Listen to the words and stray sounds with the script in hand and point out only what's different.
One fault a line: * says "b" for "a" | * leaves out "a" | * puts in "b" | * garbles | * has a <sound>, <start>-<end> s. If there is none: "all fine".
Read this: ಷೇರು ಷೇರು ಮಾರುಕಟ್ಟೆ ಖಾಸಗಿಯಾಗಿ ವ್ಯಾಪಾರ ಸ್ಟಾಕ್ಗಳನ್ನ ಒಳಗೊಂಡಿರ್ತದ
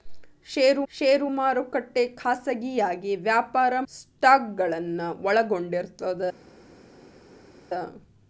all fine